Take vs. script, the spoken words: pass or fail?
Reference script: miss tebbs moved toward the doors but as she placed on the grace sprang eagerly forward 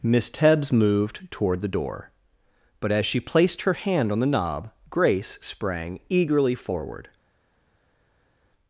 fail